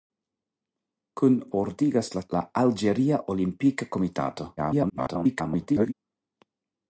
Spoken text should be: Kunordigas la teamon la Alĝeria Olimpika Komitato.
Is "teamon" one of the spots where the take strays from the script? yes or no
yes